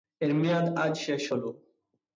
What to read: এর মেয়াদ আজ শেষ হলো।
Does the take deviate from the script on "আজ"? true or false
false